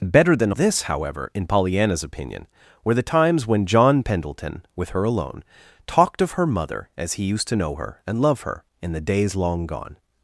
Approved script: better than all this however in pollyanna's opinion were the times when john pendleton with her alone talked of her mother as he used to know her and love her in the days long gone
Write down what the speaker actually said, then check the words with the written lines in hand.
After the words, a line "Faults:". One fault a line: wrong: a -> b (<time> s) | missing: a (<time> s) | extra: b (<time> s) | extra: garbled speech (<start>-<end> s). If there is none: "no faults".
better than this however in pollyanna's opinion were the times when john pendleton with her alone talked of her mother as he used to know her and love her in the days long gone
Faults:
missing: all (0.5 s)